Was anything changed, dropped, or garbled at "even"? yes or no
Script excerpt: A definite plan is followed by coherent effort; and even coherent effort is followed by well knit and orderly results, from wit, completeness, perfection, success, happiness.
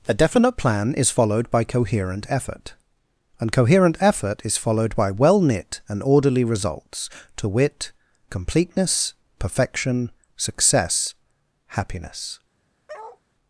yes